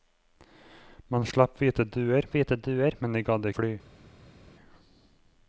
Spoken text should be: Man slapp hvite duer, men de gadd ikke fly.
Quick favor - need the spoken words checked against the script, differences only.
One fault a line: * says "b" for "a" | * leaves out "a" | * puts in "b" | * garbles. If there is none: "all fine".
* puts in "hvite duer"
* leaves out "ikke"